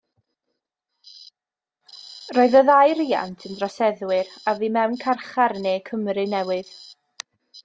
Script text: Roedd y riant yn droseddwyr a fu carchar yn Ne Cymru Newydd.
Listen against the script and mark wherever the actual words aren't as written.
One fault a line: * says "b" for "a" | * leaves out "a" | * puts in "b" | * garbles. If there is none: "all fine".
* puts in "ddau"
* puts in "mewn"